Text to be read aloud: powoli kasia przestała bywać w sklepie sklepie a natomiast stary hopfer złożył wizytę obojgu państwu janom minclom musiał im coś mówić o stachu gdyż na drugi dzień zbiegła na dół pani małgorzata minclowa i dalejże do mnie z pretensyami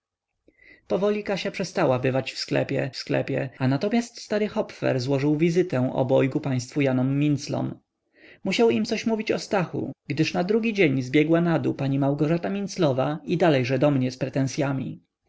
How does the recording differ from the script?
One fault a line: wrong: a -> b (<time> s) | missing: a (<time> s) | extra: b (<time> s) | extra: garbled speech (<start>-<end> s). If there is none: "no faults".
no faults